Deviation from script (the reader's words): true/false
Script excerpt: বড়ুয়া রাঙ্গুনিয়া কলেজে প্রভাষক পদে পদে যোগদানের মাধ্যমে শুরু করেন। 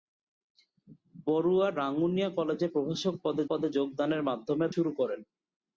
false